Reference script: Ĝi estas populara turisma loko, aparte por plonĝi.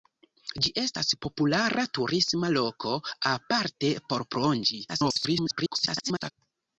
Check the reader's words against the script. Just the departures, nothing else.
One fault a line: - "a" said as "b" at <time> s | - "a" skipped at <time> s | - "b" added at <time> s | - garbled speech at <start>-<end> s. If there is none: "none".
- garbled speech at 4.9-6.3 s